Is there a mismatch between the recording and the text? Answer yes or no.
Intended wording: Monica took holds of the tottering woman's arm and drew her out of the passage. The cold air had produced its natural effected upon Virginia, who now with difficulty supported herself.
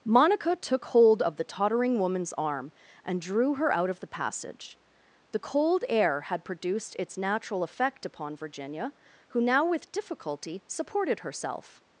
yes